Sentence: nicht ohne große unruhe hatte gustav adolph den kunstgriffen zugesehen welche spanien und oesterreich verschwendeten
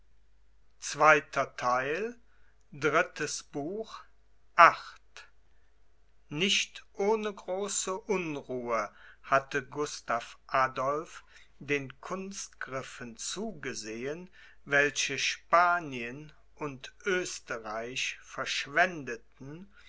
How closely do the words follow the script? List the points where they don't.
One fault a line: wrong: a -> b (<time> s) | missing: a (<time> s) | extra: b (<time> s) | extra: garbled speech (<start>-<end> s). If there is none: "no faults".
no faults